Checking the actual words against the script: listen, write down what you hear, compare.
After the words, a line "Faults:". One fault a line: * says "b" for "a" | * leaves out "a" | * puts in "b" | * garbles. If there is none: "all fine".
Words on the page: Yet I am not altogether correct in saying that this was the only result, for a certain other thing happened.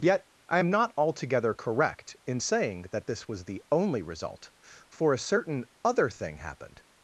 Yet I am not altogether correct in saying that this was the only result, for a certain other thing happened.
Faults:
all fine